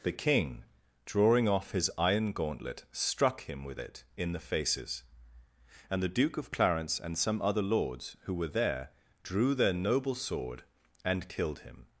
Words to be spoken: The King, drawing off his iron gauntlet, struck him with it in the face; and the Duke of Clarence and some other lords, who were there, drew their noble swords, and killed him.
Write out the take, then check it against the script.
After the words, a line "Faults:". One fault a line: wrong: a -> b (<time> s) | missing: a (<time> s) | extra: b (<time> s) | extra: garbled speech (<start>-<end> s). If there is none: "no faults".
The King, drawing off his iron gauntlet, struck him with it in the faces; and the Duke of Clarence and some other lords, who were there, drew their noble sword, and killed him.
Faults:
wrong: face -> faces (4.4 s)
wrong: swords -> sword (10.2 s)